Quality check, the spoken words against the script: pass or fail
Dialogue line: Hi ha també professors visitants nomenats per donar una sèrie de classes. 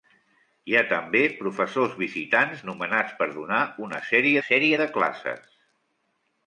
fail